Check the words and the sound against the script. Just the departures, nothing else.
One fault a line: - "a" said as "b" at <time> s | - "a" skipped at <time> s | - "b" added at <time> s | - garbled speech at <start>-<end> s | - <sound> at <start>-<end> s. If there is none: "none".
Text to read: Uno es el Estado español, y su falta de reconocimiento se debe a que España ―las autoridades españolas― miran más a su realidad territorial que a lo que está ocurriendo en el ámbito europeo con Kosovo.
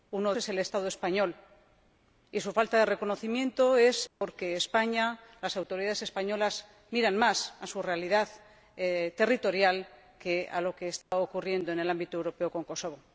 - dropout at 4.1-4.2 s
- dropout at 11.0-11.1 s